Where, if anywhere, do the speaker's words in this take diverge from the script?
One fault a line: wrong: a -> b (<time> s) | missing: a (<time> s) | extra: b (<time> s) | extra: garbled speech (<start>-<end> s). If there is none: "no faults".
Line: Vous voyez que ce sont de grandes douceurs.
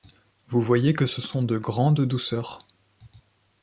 no faults